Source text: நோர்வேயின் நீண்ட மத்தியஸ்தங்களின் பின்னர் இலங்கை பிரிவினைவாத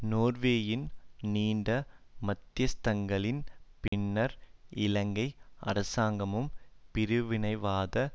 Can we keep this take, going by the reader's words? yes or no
no